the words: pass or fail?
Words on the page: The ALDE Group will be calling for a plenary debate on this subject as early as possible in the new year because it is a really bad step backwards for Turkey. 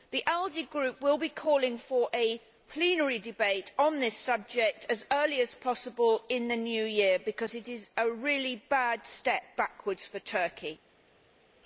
pass